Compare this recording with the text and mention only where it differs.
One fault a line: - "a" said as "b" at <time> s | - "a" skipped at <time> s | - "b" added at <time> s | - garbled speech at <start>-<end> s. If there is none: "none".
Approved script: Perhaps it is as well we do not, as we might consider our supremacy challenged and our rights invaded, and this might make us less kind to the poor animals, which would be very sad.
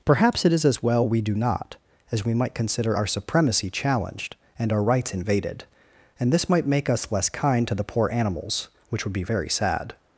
none